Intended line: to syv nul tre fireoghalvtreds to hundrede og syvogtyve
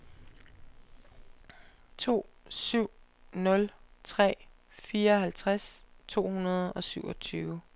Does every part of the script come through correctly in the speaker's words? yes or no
yes